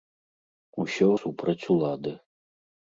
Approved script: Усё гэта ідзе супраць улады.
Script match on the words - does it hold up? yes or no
no